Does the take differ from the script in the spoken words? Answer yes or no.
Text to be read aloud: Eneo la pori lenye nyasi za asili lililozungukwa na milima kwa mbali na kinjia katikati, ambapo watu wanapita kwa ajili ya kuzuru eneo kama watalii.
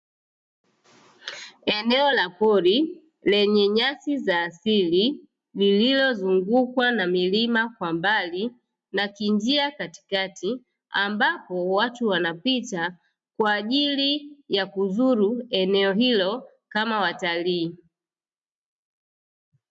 yes